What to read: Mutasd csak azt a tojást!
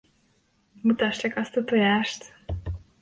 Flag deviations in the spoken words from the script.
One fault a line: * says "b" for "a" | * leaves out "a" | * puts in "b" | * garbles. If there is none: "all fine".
all fine